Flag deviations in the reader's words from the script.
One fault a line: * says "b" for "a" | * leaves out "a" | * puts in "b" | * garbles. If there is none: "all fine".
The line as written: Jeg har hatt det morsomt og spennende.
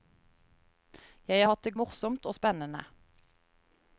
all fine